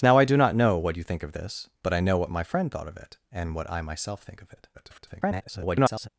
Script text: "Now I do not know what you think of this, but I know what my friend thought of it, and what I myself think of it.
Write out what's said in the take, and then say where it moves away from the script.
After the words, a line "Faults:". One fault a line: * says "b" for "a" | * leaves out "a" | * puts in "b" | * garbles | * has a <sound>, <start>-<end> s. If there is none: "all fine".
"Now I do not know what you think of this, but I know what my friend thought of it, and what I myself think of it. [garbled]
Faults:
* garbles